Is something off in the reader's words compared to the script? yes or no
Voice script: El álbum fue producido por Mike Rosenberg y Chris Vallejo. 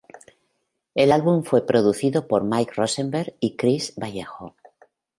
no